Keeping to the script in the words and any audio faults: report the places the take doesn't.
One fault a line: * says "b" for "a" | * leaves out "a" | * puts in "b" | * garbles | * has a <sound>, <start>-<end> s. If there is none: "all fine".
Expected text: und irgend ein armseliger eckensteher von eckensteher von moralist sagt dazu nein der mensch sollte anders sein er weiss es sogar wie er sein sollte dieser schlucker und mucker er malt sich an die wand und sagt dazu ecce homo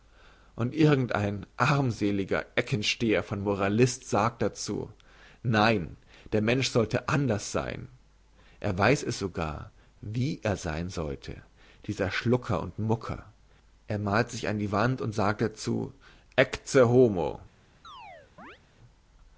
* leaves out "eckensteher von"
* has a chirp, 17.8-18.6 s